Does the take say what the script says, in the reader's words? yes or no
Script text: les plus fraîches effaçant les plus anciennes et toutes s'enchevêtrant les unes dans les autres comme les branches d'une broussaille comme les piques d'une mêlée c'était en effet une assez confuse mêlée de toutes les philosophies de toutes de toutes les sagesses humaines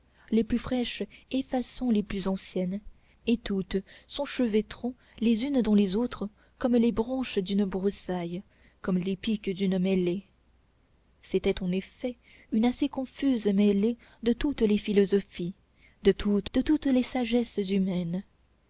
yes